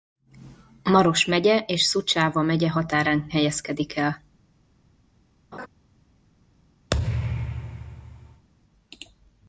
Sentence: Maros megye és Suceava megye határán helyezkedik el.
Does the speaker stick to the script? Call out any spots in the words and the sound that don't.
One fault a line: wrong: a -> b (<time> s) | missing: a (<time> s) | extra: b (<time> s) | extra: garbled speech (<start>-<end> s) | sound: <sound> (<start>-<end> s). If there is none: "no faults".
sound: laugh (5.5-5.7 s)
sound: thud (6.9-8.5 s)